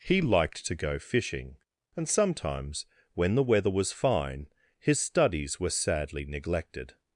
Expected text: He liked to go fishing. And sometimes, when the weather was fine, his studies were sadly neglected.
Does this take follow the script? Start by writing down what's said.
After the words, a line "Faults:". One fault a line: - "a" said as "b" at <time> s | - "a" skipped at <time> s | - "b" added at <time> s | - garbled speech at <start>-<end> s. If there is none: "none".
He liked to go fishing. And sometimes, when the weather was fine, his studies were sadly neglected.
Faults:
none